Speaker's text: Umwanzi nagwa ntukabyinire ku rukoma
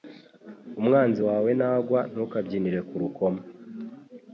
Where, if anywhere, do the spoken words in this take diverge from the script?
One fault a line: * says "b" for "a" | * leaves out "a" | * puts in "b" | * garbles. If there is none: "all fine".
* puts in "wawe"